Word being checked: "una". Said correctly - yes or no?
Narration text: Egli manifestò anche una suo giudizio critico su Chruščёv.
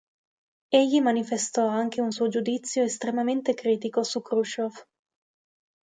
no